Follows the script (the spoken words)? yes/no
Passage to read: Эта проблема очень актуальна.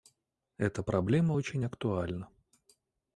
yes